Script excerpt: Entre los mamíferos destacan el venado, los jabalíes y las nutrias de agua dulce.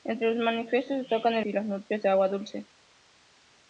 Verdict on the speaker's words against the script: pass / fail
fail